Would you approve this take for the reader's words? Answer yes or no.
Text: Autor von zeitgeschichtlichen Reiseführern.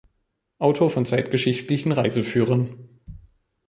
yes